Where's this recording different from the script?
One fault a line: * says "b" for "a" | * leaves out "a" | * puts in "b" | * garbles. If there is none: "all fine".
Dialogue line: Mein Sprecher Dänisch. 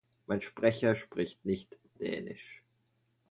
* puts in "spricht nicht"